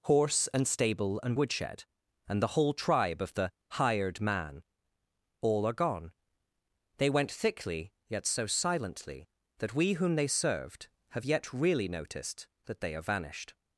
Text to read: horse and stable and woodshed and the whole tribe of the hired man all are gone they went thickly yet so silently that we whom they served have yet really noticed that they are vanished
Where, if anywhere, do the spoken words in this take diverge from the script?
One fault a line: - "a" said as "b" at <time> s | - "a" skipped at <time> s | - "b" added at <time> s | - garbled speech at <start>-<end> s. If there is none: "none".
none